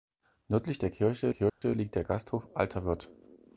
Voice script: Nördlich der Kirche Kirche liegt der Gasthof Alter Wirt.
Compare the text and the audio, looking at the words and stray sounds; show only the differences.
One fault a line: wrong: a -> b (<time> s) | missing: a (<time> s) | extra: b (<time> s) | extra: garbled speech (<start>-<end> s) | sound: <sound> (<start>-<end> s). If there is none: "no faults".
sound: dropout (1.5-1.6 s)